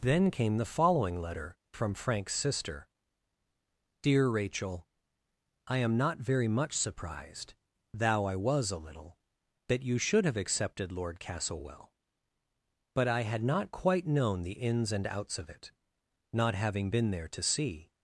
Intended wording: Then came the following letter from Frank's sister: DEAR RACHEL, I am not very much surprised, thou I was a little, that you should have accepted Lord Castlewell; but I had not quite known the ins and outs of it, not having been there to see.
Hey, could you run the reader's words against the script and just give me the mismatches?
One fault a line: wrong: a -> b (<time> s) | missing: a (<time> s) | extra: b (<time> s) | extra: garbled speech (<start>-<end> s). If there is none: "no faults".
no faults